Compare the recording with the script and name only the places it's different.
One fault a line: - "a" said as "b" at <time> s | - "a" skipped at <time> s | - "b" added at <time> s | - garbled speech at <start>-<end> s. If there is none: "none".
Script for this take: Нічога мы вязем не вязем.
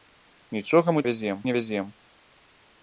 none